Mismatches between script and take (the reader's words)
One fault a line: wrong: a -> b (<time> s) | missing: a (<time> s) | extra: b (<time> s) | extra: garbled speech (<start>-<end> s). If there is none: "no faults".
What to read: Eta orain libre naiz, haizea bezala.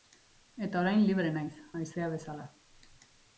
no faults